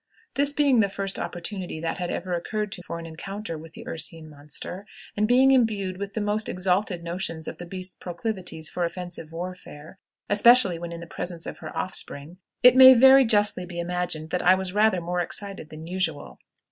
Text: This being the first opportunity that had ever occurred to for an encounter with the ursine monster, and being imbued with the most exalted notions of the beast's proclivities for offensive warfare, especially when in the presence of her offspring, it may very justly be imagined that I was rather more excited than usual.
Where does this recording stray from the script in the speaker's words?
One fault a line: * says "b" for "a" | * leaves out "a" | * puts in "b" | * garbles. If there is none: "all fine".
all fine